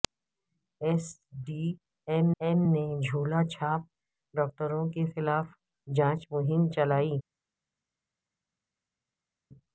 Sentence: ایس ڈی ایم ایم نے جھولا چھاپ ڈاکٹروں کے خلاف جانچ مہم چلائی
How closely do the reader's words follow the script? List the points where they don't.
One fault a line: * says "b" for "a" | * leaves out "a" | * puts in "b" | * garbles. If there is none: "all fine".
all fine